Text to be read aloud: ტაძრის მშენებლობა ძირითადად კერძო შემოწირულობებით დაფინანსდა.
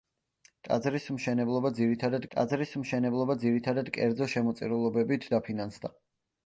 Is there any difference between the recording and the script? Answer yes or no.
yes